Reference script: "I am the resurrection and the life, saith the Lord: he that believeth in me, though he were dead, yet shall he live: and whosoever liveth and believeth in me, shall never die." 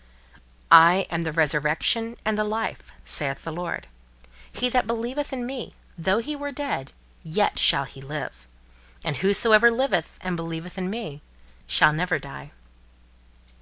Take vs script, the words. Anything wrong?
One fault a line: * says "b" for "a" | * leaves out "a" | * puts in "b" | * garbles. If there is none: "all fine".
all fine